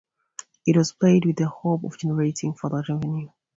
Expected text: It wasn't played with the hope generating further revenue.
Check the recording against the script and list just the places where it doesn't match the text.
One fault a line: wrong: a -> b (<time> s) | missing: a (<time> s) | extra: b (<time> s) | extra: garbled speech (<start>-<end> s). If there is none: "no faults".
wrong: wasn't -> was (0.8 s)
extra: of (1.8 s)